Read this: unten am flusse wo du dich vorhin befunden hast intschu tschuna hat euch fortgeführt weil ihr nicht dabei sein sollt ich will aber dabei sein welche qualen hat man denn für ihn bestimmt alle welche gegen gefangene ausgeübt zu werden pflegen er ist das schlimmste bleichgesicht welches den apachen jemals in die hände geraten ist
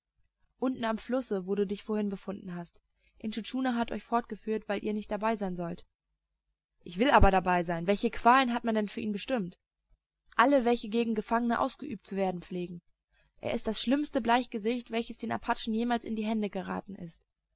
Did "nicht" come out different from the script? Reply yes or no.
no